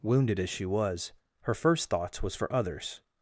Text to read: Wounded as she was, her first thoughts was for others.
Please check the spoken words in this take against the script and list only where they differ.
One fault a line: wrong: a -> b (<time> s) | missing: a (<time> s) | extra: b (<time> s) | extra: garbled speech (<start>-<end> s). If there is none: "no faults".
no faults